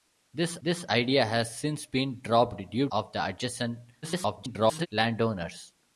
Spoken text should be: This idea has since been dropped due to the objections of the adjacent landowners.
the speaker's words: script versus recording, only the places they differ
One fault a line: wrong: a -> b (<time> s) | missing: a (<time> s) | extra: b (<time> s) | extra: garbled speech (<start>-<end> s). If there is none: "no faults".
extra: this (0.6 s)
missing: to the objections (2.9 s)
extra: garbled speech (4.0-4.9 s)